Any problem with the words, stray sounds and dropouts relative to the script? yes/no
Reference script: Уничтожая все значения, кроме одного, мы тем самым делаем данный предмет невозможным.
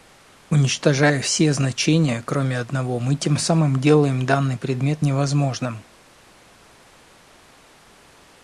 no